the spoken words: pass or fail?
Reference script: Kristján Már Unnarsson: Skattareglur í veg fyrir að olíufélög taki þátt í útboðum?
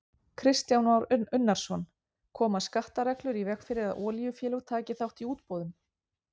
fail